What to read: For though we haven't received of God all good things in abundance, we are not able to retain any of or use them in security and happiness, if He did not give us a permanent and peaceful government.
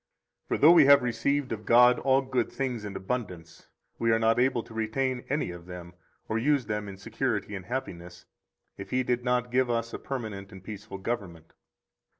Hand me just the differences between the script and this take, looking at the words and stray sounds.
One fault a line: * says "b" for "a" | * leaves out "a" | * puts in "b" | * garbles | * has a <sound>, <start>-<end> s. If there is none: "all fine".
* says "have" for "haven't"
* puts in "them"